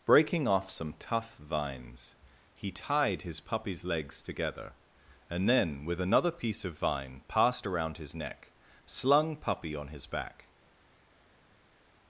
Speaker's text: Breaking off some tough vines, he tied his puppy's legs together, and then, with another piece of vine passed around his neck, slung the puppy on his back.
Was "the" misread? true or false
true